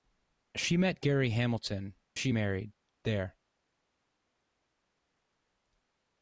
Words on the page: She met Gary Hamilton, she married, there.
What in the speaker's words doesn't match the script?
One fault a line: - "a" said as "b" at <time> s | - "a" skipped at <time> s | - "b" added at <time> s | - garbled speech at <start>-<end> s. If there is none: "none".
none